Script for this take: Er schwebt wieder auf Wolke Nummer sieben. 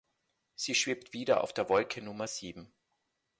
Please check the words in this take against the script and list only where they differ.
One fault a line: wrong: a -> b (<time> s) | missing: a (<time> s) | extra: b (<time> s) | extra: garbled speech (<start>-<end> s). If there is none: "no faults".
wrong: Er -> Sie (0.6 s)
extra: der (1.5 s)